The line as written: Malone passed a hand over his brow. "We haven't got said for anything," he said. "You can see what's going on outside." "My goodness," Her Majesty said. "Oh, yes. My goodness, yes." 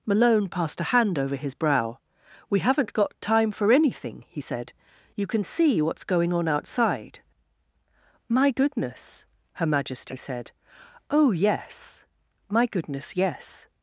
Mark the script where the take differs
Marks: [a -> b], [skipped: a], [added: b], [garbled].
Malone passed a hand over his brow. "We haven't got [said -> time] for anything," he said. "You can see what's going on outside." "My goodness," Her Majesty said. "Oh, yes. My goodness, yes."